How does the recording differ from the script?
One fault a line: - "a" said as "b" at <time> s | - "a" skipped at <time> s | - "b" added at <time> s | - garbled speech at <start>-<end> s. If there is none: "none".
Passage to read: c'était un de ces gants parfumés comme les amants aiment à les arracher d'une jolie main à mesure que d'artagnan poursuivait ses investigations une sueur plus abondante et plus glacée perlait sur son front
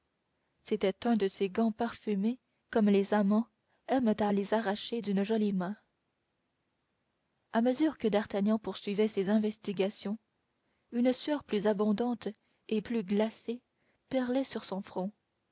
none